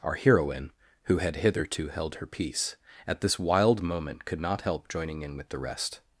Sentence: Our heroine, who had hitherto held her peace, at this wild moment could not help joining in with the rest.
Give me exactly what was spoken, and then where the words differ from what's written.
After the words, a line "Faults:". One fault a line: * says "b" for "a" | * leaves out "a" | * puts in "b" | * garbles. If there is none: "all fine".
Our heroine, who had hitherto held her peace, at this wild moment could not help joining in with the rest.
Faults:
all fine